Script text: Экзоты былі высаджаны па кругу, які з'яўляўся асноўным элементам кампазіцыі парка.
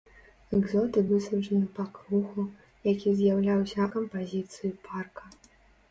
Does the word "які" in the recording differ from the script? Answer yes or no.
no